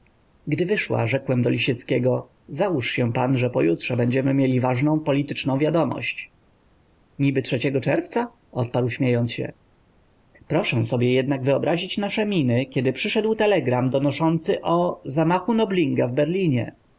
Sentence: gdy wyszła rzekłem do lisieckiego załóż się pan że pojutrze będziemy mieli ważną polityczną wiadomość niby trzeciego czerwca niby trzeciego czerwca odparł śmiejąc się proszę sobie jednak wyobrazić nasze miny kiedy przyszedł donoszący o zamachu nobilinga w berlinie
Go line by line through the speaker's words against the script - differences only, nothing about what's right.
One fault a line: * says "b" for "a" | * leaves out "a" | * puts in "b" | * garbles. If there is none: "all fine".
* leaves out "niby trzeciego czerwca"
* puts in "telegram"